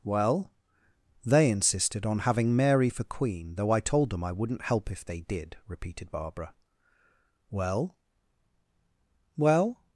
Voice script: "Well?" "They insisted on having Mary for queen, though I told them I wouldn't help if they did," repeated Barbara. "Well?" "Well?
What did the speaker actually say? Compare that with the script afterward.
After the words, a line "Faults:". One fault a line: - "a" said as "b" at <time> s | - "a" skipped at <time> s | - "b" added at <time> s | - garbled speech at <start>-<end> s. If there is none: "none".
"Well?" "They insisted on having Mary for queen, though I told them I wouldn't help if they did," repeated Barbara. "Well?" "Well?
Faults:
none